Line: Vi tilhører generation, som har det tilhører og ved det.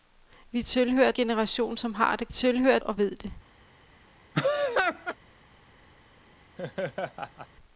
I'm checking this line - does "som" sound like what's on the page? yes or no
yes